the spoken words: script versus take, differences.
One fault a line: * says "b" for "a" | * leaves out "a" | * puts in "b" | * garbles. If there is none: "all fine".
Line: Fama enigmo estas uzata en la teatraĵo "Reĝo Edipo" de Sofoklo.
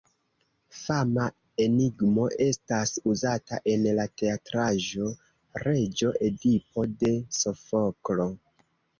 all fine